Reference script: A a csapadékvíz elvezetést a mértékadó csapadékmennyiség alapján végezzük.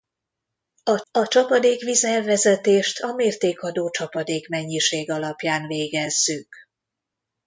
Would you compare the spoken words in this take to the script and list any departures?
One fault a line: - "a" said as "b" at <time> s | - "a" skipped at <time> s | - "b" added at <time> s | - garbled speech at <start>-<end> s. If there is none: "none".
none